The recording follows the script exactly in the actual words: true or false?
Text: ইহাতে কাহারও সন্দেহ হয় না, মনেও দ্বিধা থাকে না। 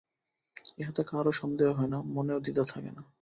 true